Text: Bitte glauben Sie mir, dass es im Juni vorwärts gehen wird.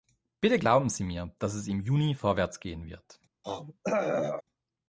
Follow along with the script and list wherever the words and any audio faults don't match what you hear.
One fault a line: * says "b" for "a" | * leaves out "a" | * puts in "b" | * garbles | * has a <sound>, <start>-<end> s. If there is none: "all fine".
* has a throat clearing, 3.4-4.4 s